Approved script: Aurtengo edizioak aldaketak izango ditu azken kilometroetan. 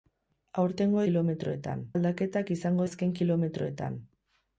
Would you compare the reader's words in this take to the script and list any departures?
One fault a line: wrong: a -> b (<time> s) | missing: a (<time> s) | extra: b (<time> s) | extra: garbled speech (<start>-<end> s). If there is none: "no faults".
wrong: edizioak -> kilometroetan (1.1 s)
missing: ditu (2.9 s)